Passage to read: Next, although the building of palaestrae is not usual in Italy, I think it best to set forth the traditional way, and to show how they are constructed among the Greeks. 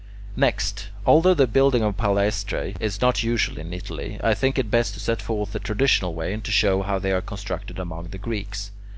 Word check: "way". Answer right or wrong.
right